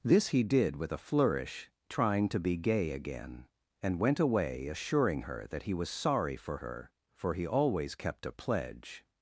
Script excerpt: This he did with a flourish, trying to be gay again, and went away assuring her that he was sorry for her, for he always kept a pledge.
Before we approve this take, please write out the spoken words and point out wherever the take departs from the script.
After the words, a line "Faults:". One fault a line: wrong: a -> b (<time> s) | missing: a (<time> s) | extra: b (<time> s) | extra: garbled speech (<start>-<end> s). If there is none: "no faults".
This he did with a flourish, trying to be gay again, and went away assuring her that he was sorry for her, for he always kept a pledge.
Faults:
no faults